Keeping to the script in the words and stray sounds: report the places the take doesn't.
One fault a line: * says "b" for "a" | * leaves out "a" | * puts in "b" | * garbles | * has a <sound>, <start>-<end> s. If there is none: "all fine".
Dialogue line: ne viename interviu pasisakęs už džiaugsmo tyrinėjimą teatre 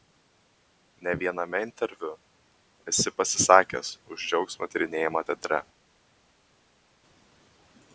* puts in "esi"